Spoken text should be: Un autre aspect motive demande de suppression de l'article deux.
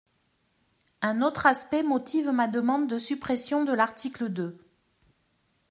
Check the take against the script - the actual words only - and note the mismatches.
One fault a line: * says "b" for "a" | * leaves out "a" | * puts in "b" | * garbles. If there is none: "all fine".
* puts in "ma"